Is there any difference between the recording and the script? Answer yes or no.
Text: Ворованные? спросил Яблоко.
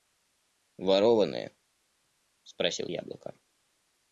no